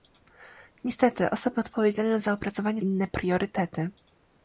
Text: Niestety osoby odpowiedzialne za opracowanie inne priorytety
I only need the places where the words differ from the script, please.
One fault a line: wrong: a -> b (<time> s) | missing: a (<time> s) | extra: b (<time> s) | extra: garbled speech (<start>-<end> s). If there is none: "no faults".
no faults